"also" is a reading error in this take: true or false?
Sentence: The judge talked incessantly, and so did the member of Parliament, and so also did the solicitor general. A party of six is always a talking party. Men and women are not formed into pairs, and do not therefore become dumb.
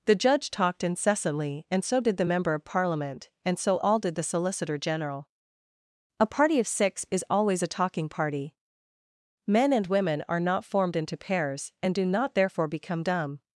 true